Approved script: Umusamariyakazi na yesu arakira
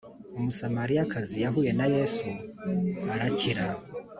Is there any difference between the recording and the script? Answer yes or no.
yes